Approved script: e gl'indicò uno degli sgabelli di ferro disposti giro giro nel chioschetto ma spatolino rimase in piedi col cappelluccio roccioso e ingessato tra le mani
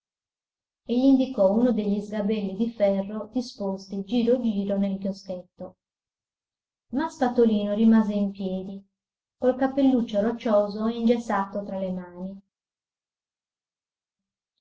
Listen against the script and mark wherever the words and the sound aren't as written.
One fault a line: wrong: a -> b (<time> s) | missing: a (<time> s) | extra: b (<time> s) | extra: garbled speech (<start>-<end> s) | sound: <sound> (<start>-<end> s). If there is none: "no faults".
no faults